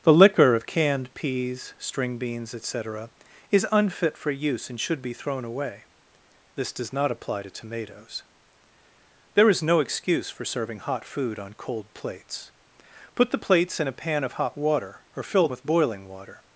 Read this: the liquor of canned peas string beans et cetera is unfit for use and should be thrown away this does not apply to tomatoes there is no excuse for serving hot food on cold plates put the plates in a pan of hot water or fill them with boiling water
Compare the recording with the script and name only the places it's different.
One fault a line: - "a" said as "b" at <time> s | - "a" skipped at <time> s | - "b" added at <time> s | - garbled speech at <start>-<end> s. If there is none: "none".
- "them" skipped at 15.5 s